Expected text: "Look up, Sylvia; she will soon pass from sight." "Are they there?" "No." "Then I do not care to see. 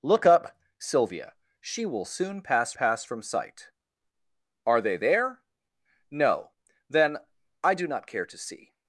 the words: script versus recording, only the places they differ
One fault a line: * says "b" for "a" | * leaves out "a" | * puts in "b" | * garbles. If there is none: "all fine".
* puts in "pass"